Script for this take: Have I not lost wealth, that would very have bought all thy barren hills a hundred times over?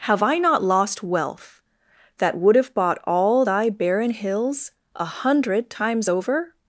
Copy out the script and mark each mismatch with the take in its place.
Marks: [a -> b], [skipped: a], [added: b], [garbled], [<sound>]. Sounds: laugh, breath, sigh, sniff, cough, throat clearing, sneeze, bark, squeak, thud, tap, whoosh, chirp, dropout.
Have I not lost wealth, that would [skipped: very] have bought all thy barren hills a hundred times over?